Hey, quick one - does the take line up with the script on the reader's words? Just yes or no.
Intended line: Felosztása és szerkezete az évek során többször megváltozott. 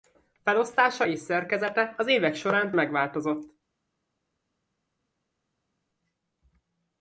no